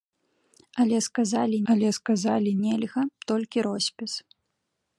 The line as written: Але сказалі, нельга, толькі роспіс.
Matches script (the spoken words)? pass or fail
fail